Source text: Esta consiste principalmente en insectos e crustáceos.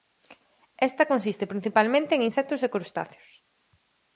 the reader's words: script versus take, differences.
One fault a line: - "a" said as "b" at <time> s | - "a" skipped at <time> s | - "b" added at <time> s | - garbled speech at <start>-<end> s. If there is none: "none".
none